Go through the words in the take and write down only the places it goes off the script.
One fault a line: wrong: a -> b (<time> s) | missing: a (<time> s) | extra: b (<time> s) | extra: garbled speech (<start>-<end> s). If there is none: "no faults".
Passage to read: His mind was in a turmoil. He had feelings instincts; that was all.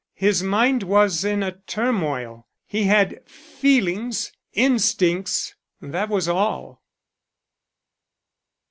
no faults